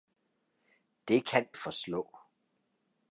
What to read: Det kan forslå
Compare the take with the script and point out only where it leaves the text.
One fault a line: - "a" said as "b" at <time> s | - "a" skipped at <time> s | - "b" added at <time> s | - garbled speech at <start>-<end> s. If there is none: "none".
none